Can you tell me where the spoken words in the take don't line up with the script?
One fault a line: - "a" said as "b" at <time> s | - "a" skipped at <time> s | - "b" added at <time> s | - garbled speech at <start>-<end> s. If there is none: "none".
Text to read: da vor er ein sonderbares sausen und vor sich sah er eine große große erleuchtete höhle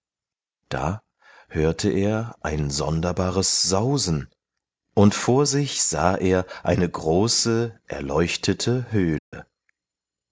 - "vor" said as "hörte" at 1.5 s
- "große" skipped at 7.8 s